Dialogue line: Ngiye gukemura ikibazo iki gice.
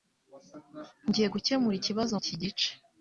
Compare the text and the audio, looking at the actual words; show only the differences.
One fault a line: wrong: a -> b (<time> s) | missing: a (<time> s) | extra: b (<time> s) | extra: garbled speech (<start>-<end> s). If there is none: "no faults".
no faults